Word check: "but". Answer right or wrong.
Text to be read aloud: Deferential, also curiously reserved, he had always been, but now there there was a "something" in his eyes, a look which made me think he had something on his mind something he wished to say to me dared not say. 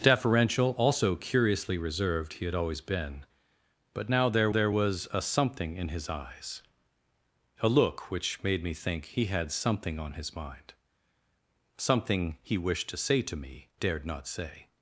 right